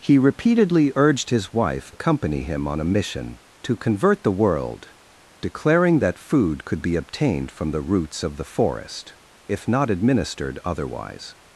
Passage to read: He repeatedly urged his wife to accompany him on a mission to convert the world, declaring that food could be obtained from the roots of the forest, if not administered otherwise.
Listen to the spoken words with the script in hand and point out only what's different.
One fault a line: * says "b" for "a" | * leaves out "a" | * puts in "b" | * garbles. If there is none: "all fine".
* leaves out "to"